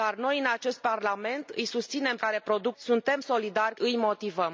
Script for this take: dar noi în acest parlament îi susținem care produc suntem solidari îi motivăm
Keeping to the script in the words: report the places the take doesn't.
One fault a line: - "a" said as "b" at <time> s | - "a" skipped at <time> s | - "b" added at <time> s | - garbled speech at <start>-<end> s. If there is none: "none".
none